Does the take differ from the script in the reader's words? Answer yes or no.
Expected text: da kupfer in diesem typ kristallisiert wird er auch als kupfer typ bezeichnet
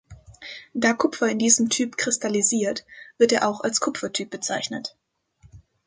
no